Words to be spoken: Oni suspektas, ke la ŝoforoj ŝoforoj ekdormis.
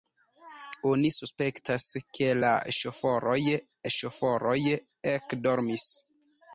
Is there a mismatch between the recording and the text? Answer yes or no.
no